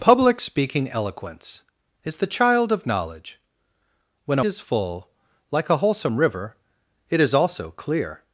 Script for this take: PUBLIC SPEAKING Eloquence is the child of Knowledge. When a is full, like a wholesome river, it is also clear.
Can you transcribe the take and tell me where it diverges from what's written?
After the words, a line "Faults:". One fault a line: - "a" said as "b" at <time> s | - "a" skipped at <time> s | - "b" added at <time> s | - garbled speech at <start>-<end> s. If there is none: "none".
PUBLIC SPEAKING Eloquence is the child of Knowledge. When a is full, like a wholesome river, it is also clear.
Faults:
none